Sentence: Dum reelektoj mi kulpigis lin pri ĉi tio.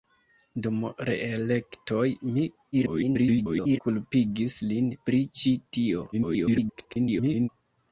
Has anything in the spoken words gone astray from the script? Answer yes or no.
yes